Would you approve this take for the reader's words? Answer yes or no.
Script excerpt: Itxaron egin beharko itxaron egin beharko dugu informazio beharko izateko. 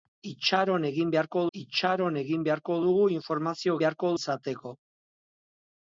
yes